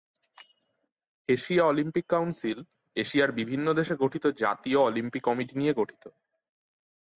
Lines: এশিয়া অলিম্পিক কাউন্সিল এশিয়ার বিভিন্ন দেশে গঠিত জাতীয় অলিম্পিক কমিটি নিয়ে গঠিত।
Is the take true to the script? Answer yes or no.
yes